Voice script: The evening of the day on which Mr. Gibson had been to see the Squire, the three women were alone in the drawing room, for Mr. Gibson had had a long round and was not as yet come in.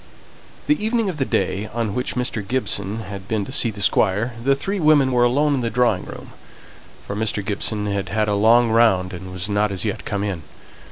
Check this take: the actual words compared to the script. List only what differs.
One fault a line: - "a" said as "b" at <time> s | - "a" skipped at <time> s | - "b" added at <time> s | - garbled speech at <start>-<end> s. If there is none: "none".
none